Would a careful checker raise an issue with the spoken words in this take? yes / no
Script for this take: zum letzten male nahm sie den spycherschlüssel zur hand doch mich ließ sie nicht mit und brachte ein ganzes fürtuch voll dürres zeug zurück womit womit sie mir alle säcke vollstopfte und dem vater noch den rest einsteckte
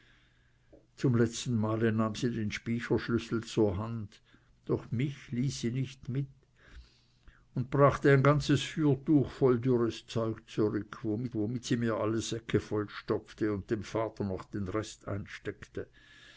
no